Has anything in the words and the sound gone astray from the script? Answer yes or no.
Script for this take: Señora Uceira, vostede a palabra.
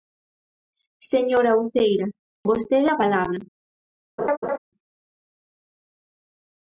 yes